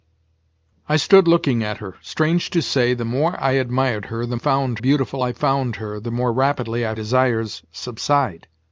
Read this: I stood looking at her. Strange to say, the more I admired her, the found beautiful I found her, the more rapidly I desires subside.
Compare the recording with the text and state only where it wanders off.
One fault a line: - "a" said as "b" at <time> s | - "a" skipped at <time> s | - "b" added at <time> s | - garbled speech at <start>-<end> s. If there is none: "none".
none